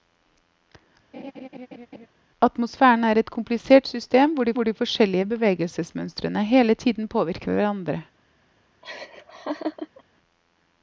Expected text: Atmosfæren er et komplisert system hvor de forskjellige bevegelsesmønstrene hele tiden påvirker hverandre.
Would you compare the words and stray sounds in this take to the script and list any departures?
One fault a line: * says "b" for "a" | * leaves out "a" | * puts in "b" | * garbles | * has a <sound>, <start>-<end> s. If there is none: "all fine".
* has a laugh, 1.1-2.1 s
* puts in "hvor de"
* has a laugh, 8.8-10.0 s